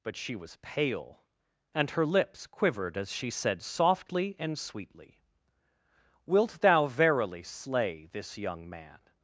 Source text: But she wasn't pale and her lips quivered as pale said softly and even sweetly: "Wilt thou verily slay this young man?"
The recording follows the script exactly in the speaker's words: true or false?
false